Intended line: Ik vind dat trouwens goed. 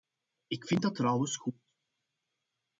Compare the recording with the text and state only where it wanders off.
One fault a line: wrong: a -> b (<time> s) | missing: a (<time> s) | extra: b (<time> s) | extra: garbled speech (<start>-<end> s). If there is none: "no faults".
no faults